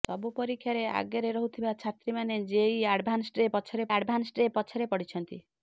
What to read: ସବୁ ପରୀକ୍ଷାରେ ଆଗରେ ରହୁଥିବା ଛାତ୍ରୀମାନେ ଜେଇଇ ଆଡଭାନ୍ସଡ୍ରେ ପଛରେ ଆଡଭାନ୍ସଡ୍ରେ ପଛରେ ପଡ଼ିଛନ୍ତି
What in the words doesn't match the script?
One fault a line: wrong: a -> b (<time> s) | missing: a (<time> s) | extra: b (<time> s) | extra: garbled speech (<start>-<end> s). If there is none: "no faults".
no faults